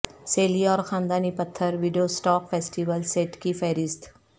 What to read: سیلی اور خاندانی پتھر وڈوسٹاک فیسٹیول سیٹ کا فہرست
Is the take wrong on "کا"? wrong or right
wrong